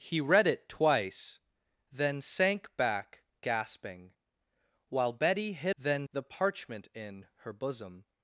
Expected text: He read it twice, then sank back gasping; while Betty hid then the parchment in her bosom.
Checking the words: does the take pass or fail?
pass